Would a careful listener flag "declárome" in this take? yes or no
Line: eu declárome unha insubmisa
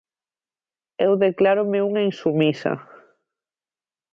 no